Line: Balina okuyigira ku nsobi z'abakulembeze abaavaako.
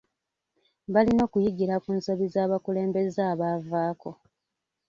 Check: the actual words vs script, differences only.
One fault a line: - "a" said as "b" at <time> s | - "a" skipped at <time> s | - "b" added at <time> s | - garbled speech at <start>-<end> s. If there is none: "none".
none